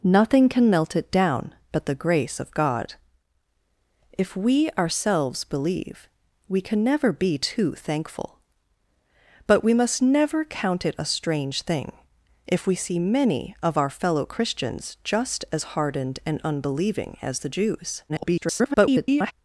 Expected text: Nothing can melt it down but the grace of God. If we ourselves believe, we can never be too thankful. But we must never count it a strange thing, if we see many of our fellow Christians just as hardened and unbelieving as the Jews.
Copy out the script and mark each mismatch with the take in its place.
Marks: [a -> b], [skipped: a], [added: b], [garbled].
Nothing can melt it down but the grace of God. If we ourselves believe, we can never be too thankful. But we must never count it a strange thing, if we see many of our fellow Christians just as hardened and unbelieving as the Jews. [garbled]